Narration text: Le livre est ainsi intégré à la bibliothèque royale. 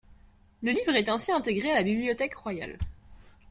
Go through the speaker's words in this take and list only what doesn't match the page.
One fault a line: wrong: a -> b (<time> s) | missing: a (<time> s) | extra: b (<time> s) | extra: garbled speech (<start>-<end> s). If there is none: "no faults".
no faults